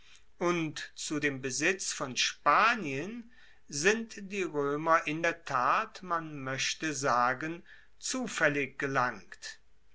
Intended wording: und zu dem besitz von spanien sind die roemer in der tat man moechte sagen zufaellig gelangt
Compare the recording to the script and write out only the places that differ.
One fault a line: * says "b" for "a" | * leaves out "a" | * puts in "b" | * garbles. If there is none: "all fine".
all fine